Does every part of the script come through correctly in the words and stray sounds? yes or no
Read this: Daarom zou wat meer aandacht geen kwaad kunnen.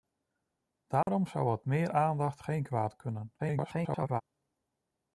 no